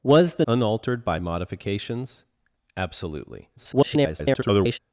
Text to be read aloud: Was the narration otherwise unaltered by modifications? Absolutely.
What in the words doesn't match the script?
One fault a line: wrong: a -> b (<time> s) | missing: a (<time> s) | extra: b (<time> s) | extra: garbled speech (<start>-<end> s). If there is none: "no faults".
missing: narration otherwise (0.5 s)
extra: garbled speech (3.6-4.8 s)